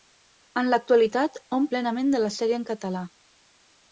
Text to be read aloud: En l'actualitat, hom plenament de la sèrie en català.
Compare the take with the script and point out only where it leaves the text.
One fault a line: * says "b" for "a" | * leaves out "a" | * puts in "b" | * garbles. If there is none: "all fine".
all fine